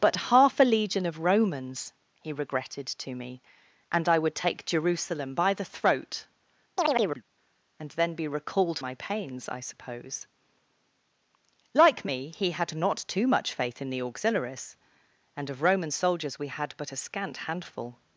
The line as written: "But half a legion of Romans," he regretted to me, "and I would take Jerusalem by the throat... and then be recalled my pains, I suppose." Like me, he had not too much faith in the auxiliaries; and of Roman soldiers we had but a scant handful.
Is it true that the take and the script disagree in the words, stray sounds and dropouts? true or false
true